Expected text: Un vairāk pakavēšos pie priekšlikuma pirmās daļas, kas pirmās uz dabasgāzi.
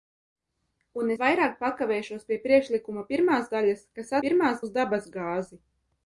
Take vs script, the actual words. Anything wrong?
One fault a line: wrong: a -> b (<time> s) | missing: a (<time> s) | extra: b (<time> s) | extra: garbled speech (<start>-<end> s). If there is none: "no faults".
no faults